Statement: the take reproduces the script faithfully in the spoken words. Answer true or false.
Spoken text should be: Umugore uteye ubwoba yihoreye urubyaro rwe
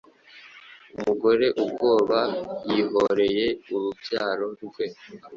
false